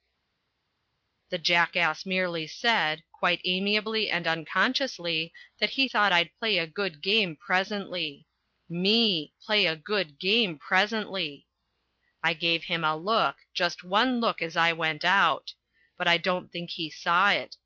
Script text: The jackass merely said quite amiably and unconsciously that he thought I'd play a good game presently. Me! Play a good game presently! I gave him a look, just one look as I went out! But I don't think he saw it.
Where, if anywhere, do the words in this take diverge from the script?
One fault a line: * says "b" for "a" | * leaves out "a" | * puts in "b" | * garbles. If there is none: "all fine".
all fine